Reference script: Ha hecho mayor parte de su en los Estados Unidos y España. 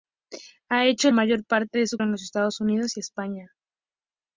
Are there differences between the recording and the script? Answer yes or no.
no